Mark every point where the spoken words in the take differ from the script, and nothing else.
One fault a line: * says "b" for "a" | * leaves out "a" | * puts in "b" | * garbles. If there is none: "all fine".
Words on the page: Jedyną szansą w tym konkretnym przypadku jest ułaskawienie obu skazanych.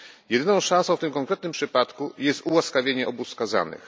all fine